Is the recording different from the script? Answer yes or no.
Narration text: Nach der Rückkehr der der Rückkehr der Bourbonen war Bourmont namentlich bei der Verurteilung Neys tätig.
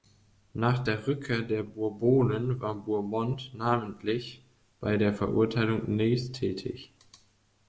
yes